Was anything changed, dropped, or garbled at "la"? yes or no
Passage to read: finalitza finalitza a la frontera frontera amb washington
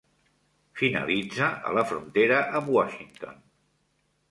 no